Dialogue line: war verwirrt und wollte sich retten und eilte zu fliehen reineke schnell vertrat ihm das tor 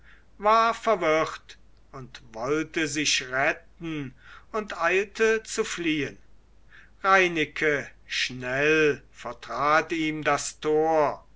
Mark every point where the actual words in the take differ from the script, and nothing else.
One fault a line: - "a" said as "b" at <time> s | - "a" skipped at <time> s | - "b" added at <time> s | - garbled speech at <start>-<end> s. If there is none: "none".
none